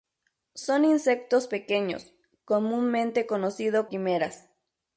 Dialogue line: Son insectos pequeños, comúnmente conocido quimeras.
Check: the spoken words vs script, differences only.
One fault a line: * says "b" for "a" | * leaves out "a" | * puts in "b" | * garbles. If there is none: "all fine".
all fine